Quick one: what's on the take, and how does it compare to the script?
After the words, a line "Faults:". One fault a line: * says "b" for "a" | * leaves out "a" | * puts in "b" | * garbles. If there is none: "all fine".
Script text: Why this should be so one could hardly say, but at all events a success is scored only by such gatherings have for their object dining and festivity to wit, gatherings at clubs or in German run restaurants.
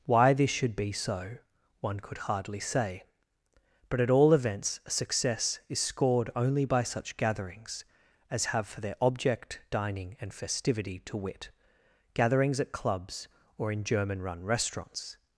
Why this should be so one could hardly say, but at all events a success is scored only by such gatherings as have for their object dining and festivity to wit, gatherings at clubs or in German run restaurants.
Faults:
* puts in "as"